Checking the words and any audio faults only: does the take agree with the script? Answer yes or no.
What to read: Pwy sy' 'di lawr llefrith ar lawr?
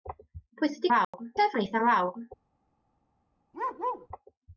no